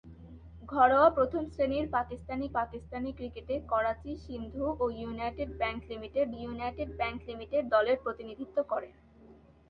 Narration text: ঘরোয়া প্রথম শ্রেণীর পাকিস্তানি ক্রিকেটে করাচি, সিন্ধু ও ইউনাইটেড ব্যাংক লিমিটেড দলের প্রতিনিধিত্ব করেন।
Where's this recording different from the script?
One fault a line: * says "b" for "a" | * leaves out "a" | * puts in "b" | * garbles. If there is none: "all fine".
* puts in "পাকিস্তানি"
* puts in "ইউনাইটেড ব্যাংক লিমিটেড"